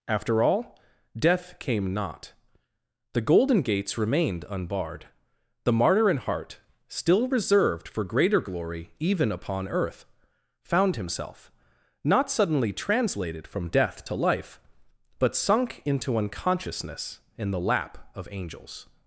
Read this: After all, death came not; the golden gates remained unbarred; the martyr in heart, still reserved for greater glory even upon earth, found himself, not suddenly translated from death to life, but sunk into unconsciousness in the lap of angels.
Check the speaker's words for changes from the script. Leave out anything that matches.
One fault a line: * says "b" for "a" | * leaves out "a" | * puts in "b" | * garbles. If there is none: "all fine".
all fine